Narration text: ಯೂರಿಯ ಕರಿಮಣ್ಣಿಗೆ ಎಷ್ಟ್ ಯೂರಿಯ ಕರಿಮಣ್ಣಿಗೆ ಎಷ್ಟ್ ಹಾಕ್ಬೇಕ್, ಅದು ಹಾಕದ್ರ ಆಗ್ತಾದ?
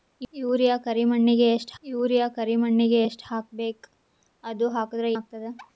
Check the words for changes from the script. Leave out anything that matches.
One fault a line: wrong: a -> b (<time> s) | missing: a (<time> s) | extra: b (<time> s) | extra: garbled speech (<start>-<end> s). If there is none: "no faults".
no faults